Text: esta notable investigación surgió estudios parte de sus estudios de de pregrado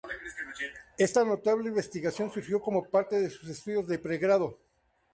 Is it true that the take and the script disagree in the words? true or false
true